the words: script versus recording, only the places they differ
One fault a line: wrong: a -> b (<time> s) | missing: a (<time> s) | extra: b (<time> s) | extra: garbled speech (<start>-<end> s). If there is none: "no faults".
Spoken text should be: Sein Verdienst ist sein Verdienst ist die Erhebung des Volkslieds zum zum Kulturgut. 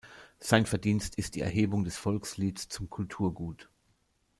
missing: sein Verdienst ist (1.4 s)
missing: zum (2.9 s)